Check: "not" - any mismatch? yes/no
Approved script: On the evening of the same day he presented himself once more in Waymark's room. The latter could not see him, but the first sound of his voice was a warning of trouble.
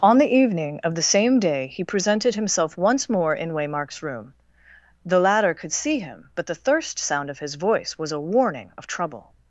yes